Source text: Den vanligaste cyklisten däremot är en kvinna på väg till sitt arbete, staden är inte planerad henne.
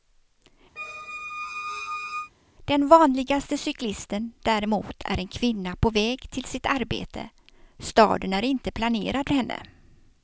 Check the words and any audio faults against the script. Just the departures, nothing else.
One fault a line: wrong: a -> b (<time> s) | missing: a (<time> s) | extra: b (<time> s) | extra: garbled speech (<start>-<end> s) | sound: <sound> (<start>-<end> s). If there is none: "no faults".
sound: squeak (0.8-2.3 s)